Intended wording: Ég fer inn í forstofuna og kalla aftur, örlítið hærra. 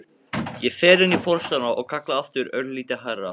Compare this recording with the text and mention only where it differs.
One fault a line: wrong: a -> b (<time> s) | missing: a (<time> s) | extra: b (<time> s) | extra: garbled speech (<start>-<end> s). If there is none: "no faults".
no faults